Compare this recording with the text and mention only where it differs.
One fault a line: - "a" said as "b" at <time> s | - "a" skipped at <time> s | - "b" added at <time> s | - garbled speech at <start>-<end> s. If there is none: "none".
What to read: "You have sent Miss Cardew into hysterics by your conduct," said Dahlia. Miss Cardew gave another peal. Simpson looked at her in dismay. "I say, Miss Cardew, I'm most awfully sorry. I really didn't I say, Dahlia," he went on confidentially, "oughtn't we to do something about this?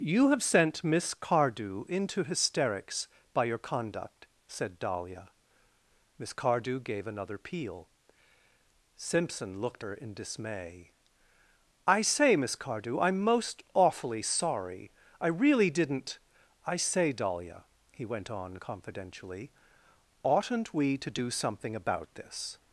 - "at" skipped at 9.8 s